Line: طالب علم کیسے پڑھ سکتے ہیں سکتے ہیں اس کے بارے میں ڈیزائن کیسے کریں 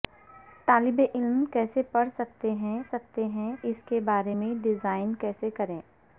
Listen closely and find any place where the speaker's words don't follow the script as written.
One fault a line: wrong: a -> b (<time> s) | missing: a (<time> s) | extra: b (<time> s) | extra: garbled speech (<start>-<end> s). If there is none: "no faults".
no faults